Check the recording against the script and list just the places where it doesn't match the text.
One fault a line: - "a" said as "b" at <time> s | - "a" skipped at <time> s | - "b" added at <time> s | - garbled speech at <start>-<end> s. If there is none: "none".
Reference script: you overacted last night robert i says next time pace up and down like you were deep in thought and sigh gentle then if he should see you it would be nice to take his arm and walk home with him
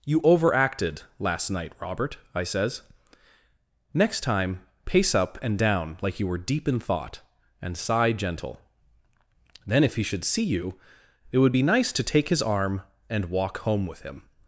none